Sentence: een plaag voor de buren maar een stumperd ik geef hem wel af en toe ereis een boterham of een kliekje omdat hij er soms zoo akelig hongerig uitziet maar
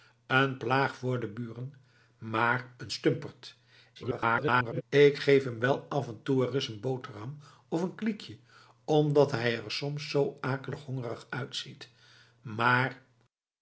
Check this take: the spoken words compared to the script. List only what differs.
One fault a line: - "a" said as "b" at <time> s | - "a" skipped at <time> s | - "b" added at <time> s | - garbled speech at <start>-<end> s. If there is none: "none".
- garbled speech at 4.0-4.8 s